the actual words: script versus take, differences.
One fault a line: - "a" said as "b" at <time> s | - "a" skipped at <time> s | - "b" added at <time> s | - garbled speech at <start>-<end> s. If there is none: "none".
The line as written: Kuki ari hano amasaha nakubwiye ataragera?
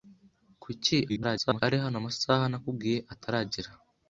- garbled speech at 1.1-1.6 s